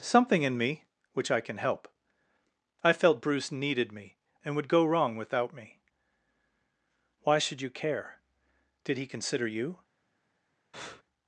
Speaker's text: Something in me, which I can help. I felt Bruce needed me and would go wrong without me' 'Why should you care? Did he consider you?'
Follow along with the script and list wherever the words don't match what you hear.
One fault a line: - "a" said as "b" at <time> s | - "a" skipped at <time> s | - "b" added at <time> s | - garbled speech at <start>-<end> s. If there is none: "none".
none